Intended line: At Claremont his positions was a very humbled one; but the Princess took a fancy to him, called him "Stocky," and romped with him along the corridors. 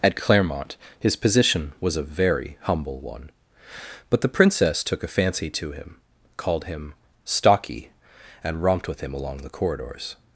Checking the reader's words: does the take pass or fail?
fail